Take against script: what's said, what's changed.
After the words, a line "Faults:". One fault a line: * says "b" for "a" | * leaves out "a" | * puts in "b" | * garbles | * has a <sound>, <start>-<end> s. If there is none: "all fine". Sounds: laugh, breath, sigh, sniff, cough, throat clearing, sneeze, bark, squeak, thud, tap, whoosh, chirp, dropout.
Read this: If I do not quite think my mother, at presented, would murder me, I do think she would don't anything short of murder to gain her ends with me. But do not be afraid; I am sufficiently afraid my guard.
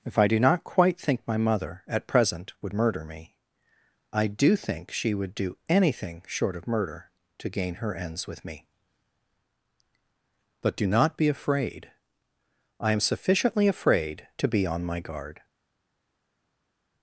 If I do not quite think my mother, at present, would murder me, I do think she would do anything short of murder to gain her ends with me. But do not be afraid; I am sufficiently afraid to be on my guard.
Faults:
* says "present" for "presented"
* says "do" for "don't"
* puts in "to be on"